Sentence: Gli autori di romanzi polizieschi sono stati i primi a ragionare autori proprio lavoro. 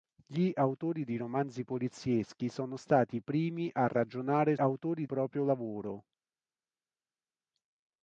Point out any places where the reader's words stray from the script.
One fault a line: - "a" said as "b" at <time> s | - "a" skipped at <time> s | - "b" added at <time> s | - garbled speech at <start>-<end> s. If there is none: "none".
none